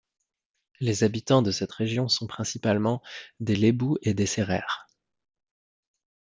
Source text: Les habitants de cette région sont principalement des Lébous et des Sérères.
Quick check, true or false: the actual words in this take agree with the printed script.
true